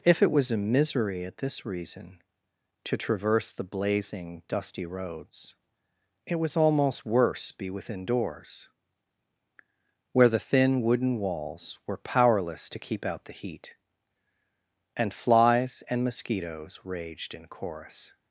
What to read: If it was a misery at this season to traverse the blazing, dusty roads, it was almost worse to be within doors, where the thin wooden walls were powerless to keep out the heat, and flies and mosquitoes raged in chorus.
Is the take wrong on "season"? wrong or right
wrong